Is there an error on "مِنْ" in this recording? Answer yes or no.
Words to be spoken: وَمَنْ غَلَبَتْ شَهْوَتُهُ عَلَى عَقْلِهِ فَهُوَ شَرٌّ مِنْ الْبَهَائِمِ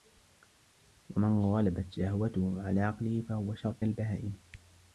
yes